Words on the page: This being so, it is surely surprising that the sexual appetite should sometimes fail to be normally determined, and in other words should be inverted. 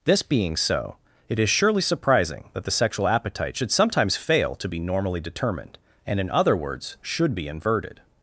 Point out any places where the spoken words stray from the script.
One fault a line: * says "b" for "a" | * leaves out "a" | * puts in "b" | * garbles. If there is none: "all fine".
all fine